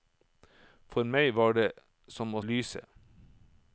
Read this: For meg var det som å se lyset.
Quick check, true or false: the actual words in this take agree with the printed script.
false